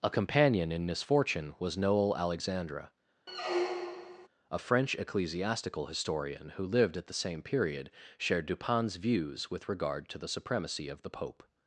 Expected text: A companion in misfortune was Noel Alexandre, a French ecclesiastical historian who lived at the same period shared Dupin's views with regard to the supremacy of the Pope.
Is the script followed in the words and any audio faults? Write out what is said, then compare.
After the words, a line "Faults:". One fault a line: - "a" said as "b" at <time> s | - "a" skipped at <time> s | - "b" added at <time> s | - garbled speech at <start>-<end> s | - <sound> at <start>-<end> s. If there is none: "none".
A companion in misfortune was Noel Alexandre, a French ecclesiastical historian who lived at the same period shared Dupin's views with regard to the supremacy of the Pope.
Faults:
- squeak at 3.3-4.3 s